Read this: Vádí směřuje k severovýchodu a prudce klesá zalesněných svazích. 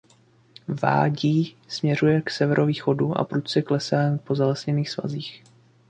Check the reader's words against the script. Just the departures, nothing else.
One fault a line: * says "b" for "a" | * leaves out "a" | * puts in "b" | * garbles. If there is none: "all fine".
* puts in "po"